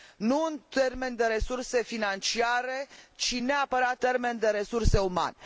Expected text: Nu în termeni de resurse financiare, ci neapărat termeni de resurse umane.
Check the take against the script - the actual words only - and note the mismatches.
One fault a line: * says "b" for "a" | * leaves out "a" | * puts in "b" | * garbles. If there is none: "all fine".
all fine